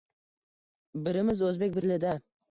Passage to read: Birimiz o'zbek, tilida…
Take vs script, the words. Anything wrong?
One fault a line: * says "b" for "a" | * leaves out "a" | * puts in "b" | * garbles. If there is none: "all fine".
all fine